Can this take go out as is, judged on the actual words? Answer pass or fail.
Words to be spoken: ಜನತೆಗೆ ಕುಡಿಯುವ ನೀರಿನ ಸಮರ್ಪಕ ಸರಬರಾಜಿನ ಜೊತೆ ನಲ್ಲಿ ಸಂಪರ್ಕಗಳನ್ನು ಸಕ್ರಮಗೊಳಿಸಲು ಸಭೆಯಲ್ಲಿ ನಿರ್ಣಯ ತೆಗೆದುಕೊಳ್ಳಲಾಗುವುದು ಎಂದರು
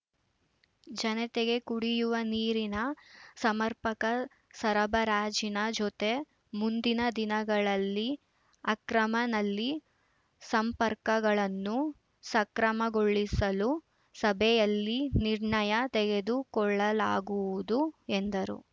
fail